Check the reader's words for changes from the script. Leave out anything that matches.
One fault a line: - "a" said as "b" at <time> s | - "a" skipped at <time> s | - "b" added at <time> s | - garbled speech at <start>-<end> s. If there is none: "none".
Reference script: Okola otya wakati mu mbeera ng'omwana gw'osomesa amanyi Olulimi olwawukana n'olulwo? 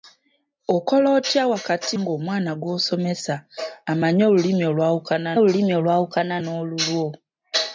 - "mu mbeera" skipped at 1.9 s
- "Olulimi olwawukana" added at 5.4 s